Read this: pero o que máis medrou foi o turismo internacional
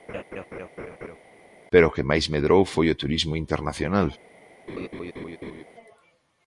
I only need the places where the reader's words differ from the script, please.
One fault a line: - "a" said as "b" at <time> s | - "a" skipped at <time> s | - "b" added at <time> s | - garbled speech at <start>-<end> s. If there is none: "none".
none